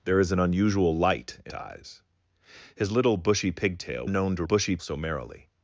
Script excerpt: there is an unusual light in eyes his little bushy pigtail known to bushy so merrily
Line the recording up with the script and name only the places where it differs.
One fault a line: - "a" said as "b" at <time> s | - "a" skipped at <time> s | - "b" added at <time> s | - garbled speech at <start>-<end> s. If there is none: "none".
none